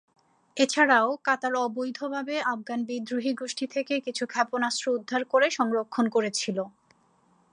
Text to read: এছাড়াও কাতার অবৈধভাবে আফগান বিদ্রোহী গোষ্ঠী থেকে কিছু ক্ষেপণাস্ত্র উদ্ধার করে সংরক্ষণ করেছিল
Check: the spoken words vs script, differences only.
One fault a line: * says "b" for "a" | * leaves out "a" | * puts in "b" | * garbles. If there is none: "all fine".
all fine